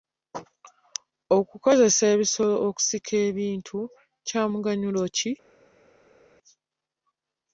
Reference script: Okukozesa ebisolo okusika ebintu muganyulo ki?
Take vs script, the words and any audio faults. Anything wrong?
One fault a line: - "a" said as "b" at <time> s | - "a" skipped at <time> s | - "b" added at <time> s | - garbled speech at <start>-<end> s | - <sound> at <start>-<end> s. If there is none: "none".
- "kya" added at 4.3 s